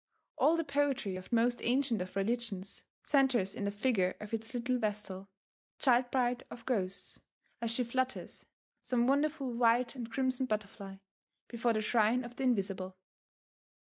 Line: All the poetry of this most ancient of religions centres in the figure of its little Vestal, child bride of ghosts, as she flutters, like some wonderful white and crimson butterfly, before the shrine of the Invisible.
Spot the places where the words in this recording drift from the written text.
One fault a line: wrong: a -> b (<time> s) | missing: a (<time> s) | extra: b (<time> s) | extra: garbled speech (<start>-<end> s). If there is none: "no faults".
missing: this (1.3 s)
missing: like (8.5 s)